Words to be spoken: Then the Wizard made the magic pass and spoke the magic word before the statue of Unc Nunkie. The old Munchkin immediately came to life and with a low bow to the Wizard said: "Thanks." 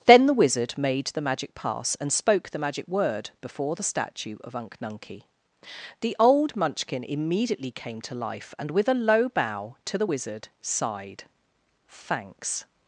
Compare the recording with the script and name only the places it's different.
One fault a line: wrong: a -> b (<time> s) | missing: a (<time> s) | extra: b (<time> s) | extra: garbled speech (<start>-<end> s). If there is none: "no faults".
wrong: said -> sighed (10.6 s)